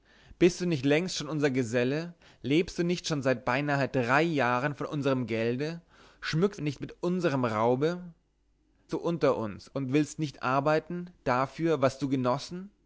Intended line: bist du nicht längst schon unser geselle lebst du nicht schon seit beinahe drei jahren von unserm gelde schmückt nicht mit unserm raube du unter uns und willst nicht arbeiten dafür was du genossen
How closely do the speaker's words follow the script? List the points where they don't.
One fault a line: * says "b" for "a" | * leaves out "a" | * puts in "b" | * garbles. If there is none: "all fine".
all fine